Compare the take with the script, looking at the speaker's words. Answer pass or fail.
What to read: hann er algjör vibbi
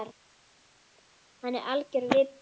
pass